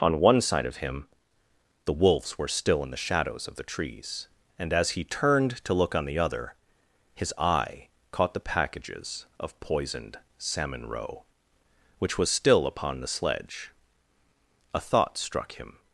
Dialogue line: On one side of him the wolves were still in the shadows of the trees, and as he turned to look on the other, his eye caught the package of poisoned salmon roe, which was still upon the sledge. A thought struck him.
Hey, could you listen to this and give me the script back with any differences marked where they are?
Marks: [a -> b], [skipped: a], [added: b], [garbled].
On one side of him the wolves were still in the shadows of the trees, and as he turned to look on the other, his eye caught the [package -> packages] of poisoned salmon roe, which was still upon the sledge. A thought struck him.